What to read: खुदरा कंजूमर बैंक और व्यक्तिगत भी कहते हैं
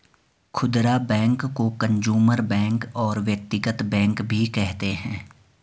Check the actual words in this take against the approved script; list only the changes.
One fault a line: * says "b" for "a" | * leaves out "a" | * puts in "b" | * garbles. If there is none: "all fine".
* puts in "बैंक को"
* puts in "बैंक"